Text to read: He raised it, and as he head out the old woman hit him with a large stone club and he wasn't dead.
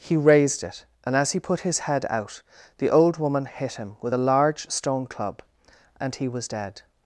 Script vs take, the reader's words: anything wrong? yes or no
yes